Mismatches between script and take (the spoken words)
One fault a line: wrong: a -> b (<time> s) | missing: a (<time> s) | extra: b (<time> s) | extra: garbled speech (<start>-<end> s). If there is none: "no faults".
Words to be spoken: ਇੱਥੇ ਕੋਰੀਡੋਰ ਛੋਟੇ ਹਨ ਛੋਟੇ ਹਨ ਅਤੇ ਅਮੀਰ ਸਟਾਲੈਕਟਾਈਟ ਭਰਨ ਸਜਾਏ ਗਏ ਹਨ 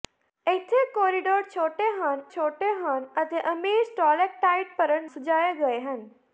no faults